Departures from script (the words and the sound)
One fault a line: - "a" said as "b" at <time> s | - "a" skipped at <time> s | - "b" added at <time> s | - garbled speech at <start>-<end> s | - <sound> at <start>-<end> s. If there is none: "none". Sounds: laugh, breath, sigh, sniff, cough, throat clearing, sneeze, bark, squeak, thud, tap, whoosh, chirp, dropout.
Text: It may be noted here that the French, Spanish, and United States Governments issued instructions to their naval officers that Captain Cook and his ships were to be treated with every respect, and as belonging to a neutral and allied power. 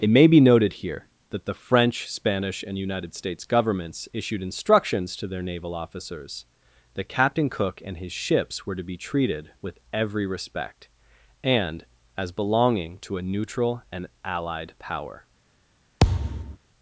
- thud at 16.0-16.6 s